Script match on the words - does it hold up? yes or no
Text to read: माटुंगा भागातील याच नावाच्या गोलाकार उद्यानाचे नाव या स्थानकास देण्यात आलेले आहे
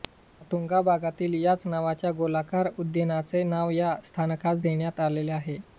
yes